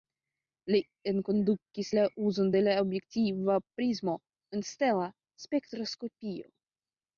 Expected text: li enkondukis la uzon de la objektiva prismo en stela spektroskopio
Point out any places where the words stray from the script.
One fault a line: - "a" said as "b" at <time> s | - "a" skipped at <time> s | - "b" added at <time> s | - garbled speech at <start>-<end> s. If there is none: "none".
none